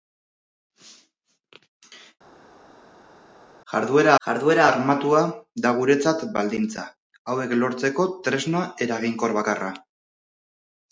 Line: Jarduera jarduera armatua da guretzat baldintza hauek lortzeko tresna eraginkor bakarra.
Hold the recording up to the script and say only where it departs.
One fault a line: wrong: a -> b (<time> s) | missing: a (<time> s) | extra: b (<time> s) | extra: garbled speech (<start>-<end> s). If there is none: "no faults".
no faults